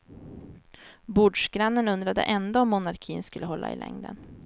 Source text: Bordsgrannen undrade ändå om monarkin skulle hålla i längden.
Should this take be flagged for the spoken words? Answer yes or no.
no